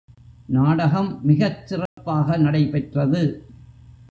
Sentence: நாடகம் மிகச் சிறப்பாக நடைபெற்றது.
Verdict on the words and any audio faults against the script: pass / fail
fail